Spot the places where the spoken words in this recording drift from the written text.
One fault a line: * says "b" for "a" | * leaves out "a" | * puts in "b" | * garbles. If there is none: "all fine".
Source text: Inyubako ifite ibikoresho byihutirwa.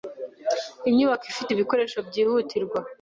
all fine